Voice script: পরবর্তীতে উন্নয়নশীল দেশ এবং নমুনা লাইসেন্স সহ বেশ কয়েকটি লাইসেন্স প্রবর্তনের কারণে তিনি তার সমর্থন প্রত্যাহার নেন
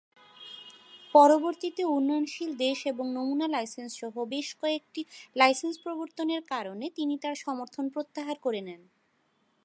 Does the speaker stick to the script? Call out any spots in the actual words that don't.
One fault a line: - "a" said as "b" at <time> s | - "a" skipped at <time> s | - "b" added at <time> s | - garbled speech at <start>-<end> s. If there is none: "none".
- "করে" added at 8.4 s